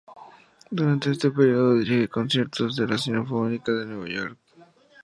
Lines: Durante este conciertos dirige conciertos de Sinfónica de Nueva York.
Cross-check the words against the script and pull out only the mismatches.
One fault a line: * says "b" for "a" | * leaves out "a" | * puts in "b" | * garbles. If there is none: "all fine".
* says "período" for "conciertos"
* puts in "la"